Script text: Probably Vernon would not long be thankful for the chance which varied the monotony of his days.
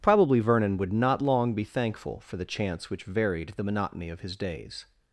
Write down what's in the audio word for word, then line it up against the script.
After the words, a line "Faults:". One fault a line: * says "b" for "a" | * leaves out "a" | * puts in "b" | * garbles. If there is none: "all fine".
Probably Vernon would not long be thankful for the chance which varied the monotony of his days.
Faults:
all fine